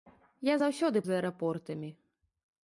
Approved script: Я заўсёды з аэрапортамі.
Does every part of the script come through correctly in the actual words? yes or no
yes